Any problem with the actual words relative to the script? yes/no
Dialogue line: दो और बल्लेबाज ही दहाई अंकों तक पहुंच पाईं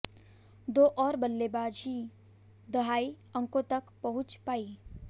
no